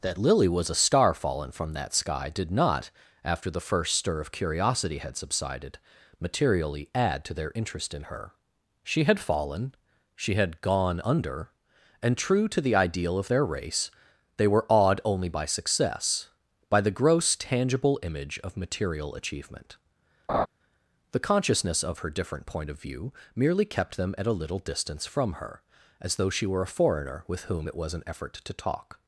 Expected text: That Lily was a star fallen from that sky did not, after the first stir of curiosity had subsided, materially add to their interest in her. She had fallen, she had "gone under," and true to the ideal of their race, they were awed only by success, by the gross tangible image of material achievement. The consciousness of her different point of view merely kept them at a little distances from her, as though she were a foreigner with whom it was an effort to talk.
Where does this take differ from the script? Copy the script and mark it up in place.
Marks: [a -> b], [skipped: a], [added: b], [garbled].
That Lily was a star fallen from that sky did not, after the first stir of curiosity had subsided, materially add to their interest in her. She had fallen, she had "gone under," and true to the ideal of their race, they were awed only by success, by the gross tangible image of material achievement. The consciousness of her different point of view merely kept them at a little [distances -> distance] from her, as though she were a foreigner with whom it was an effort to talk.